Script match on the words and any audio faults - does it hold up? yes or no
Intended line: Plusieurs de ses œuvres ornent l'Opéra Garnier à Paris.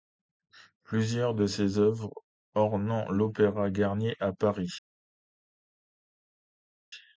yes